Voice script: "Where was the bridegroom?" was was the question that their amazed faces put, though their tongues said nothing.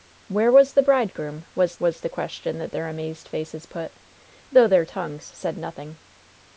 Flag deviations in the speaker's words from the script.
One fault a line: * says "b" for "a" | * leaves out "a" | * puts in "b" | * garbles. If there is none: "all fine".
all fine